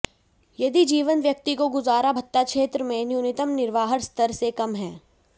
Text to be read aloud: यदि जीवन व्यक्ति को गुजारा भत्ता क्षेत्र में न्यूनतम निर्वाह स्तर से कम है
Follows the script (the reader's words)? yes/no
yes